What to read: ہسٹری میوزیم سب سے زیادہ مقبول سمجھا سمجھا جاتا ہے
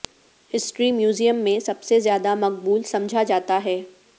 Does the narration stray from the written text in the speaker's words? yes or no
yes